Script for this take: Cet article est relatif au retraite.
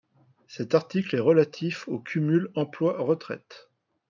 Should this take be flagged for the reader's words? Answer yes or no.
yes